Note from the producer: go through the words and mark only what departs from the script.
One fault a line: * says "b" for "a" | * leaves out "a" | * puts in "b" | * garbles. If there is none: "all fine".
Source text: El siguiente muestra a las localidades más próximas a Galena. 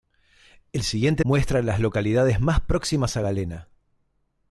all fine